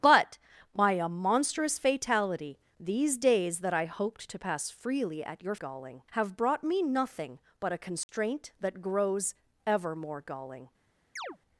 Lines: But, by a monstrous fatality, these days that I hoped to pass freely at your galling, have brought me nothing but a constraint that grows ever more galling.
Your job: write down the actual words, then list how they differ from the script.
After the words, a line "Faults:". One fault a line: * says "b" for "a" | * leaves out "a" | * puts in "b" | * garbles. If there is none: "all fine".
But, by a monstrous fatality, these days that I hoped to pass freely at your galling, have brought me nothing but a constraint that grows ever more galling.
Faults:
all fine